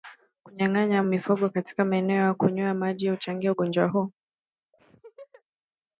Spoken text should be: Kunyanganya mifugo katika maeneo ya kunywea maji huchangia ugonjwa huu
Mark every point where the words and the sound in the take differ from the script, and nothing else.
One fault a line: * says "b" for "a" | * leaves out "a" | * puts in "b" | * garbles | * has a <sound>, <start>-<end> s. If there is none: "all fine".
* has a laugh, 4.7-5.4 s